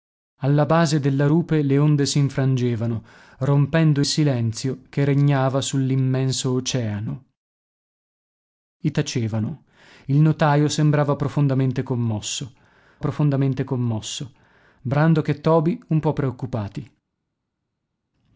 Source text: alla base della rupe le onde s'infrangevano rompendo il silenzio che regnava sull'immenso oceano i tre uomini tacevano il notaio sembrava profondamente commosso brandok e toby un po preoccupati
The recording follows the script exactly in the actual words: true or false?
false